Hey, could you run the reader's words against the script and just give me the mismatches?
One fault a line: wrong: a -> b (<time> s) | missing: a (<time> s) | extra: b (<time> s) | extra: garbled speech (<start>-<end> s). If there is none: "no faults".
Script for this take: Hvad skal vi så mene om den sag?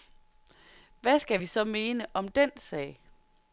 no faults